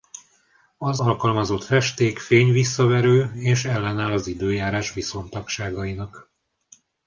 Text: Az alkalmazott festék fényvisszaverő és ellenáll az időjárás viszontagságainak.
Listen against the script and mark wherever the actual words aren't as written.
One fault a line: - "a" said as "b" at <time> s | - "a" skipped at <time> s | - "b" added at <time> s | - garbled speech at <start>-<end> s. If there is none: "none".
none